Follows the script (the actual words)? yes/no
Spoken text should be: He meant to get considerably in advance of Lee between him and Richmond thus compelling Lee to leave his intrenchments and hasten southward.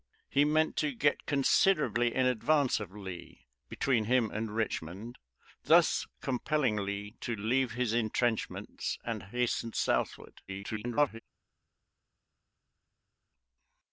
no